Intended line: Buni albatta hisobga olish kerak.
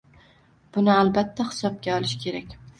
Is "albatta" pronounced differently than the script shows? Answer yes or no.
no